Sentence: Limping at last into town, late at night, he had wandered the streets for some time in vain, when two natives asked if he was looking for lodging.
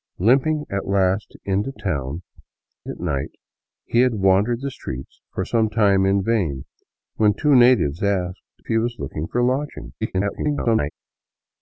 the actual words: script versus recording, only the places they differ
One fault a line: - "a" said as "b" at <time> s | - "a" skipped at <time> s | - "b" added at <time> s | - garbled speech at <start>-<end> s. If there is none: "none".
- "late" skipped at 2.2 s
- "if" skipped at 8.6 s
- garbled speech at 10.0-10.9 s